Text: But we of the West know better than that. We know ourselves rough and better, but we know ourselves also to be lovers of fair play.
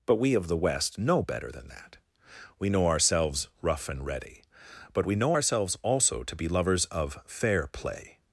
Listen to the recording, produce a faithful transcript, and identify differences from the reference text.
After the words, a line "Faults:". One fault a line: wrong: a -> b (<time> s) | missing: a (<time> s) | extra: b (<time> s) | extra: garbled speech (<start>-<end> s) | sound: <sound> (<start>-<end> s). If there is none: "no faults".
But we of the West know better than that. We know ourselves rough and ready, but we know ourselves also to be lovers of fair play.
Faults:
wrong: better -> ready (4.0 s)